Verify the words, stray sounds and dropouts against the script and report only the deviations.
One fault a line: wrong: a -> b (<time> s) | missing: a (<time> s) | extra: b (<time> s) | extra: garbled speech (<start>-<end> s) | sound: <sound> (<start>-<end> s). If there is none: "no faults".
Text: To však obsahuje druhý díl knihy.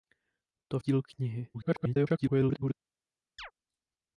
missing: však obsahuje druhý (0.8 s)
extra: garbled speech (1.5-2.7 s)
sound: chirp (3.4-3.5 s)